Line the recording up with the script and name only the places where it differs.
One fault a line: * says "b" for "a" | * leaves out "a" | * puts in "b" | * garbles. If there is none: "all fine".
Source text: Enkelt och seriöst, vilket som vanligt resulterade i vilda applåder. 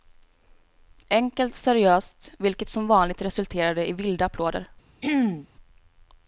all fine